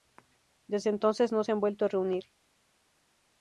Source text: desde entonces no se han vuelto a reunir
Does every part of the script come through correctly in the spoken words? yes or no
yes